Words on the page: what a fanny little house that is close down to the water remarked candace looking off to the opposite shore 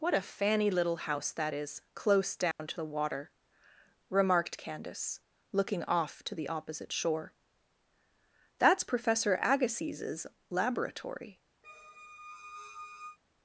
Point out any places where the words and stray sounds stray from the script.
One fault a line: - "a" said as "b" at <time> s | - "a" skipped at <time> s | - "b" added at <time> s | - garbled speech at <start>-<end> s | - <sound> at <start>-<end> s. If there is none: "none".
- dropout at 2.5-2.6 s
- "that's professor agassiz's laboratory" added at 8.6 s
- squeak at 11.6-13.2 s